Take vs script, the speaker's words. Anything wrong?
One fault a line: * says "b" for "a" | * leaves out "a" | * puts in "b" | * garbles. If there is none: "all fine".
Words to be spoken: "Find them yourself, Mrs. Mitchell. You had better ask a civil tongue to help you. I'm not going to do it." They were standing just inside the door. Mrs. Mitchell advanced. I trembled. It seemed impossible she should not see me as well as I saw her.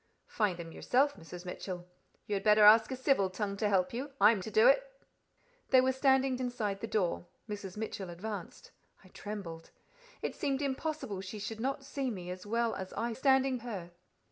* leaves out "not going"
* leaves out "just"
* says "standing" for "saw"